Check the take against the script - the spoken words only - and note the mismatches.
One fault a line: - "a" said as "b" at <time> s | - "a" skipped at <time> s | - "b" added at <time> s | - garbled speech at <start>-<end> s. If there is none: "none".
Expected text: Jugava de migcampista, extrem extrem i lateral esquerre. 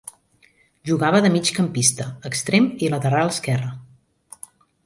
- "extrem" skipped at 2.7 s